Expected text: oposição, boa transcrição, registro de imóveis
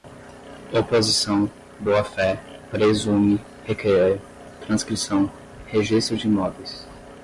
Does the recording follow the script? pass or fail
fail